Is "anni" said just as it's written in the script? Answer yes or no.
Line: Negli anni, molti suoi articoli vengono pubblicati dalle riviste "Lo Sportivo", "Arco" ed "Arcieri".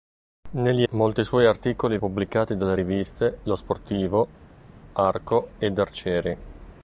no